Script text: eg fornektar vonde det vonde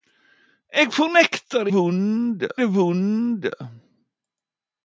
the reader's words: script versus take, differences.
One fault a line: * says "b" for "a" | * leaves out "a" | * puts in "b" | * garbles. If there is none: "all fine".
all fine